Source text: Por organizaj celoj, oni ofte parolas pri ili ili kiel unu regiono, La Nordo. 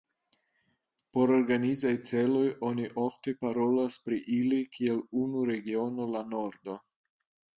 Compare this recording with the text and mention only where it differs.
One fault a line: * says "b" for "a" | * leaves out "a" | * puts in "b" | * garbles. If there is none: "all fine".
* leaves out "ili"